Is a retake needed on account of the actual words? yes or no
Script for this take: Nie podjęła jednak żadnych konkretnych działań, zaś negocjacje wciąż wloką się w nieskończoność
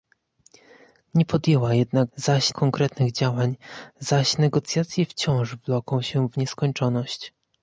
yes